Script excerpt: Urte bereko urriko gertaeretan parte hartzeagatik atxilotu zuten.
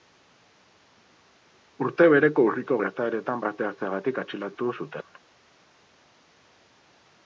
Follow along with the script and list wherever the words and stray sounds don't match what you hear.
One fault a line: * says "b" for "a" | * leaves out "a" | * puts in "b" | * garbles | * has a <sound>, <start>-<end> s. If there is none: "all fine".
all fine